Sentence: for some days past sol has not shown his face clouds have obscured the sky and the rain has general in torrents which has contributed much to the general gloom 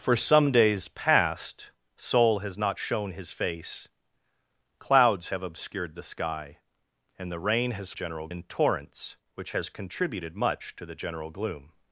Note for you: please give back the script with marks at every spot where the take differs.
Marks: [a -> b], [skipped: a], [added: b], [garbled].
for some days past sol has not shown his face clouds have obscured the sky and the rain has general in torrents which has contributed much to the general gloom